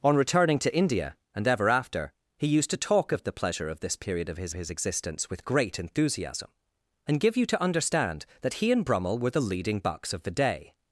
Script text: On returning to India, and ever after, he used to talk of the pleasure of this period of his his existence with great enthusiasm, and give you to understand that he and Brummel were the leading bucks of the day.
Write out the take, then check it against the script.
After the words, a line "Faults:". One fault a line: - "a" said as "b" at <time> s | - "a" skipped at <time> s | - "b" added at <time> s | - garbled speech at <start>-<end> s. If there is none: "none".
On returning to India, and ever after, he used to talk of the pleasure of this period of his his existence with great enthusiasm, and give you to understand that he and Brummel were the leading bucks of the day.
Faults:
none